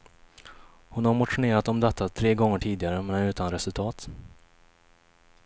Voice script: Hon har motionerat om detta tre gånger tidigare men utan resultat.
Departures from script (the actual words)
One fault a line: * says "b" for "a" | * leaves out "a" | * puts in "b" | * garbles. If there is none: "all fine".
all fine